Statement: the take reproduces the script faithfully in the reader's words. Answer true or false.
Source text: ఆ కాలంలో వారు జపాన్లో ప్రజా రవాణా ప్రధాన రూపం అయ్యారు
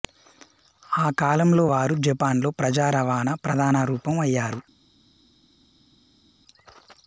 true